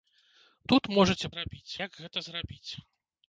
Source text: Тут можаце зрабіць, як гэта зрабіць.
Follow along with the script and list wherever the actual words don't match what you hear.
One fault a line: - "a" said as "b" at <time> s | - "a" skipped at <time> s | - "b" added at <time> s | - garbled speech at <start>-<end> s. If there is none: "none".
none